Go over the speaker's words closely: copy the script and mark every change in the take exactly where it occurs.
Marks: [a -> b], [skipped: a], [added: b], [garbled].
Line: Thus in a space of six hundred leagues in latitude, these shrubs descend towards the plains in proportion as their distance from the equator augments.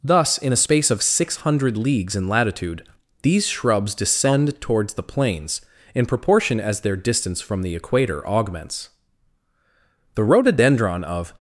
Thus in a space of six hundred leagues in latitude, these shrubs descend towards the plains in proportion as their distance from the equator augments. [added: The rhododendron of]